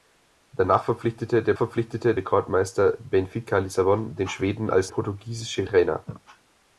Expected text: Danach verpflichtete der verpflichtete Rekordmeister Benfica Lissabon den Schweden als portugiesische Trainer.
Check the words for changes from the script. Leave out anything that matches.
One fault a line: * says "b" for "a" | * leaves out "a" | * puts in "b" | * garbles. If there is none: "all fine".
all fine